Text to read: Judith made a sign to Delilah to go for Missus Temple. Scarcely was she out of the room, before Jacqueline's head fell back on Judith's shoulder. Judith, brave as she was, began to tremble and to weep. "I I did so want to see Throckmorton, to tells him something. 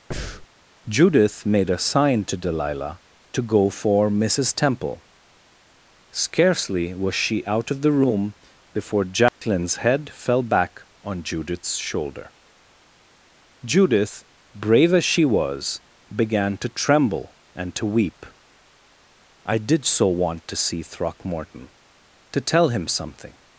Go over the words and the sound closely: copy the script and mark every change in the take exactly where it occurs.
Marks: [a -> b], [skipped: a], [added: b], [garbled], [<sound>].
[breath] Judith made a sign to Delilah to go for Missus Temple. Scarcely was she out of the room, before Jacqueline's [dropout] head fell back on Judith's shoulder. Judith, brave as she was, began to tremble and to weep. "I [skipped: I] did so want to see Throckmorton, to [tells -> tell] him something.